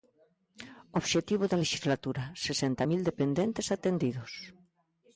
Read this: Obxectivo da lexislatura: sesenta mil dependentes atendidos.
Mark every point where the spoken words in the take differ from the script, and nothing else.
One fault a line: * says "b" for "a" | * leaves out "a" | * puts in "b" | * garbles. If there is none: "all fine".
all fine